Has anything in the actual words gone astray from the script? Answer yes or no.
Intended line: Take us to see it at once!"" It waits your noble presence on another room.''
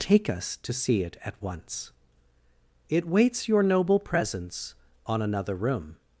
no